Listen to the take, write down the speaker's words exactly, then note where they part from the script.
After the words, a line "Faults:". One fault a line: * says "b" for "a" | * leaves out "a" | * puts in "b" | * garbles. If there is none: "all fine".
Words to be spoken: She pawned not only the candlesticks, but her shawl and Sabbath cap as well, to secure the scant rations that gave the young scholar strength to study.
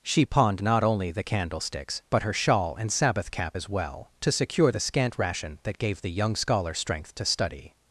She pawned not only the candlesticks, but her shawl and Sabbath cap as well, to secure the scant ration that gave the young scholar strength to study.
Faults:
* says "ration" for "rations"